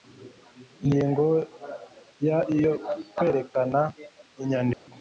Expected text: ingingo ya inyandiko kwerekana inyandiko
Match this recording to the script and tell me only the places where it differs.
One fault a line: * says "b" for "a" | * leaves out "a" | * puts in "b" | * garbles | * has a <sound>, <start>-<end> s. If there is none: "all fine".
* says "iyo" for "inyandiko"
* has a dropout, 4.7-4.9 s